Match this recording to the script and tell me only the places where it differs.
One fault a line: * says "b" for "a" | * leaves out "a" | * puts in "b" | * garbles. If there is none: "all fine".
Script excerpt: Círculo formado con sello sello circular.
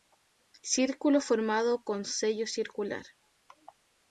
* leaves out "sello"